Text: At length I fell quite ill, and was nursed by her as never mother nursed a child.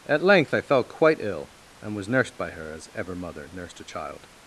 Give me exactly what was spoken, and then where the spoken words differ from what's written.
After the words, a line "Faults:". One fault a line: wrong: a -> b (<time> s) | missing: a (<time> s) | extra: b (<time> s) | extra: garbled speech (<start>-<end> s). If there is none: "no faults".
At length I fell quite ill, and was nursed by her as ever mother nursed a child.
Faults:
wrong: never -> ever (2.9 s)